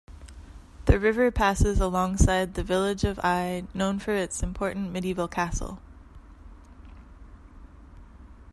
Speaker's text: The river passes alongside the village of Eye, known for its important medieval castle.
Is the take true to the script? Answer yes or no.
yes